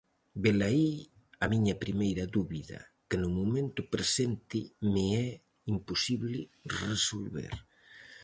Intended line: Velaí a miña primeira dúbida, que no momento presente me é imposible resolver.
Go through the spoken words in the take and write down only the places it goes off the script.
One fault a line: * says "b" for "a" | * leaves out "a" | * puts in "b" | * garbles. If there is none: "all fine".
all fine